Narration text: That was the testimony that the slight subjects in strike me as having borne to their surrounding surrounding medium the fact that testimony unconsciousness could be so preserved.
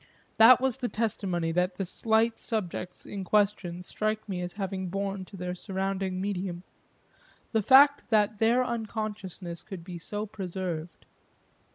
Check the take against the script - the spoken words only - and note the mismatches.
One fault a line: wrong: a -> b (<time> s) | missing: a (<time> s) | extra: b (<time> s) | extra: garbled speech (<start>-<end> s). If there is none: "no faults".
extra: question (3.2 s)
missing: surrounding (6.2 s)
wrong: testimony -> their (8.4 s)